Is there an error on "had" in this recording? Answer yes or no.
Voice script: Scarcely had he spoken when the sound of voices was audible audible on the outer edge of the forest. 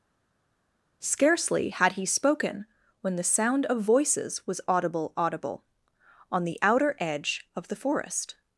no